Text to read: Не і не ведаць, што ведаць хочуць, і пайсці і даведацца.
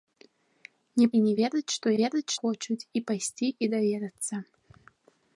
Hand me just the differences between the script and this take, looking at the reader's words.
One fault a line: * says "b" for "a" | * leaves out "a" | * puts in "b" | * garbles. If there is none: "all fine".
all fine